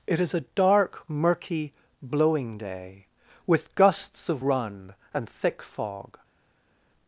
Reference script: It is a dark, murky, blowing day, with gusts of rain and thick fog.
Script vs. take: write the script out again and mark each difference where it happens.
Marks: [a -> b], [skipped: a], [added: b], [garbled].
It is a dark, murky, blowing day, with gusts of [rain -> run] and thick fog.